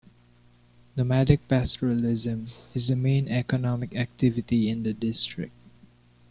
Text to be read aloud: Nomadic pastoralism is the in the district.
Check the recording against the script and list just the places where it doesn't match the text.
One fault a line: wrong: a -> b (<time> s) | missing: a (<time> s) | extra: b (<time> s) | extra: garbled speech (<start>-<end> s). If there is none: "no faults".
extra: main economic activity (3.0 s)